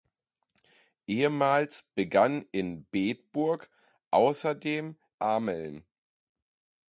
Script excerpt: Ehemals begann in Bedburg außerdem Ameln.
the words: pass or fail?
pass